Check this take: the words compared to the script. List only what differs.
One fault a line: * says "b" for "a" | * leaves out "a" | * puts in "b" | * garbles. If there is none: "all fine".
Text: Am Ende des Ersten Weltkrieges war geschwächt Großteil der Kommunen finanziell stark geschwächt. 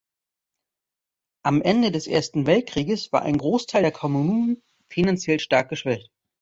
* says "ein" for "geschwächt"